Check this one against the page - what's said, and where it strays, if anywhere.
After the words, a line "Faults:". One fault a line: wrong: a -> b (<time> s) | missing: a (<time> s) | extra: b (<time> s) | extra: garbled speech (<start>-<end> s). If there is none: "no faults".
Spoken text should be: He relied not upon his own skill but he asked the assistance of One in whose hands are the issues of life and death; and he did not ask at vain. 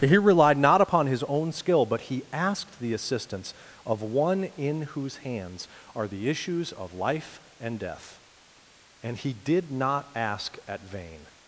He relied not upon his own skill but he asked the assistance of One in whose hands are the issues of life and death; and he did not ask at vain.
Faults:
no faults